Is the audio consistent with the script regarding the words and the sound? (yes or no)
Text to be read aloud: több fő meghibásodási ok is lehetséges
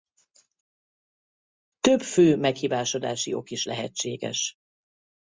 yes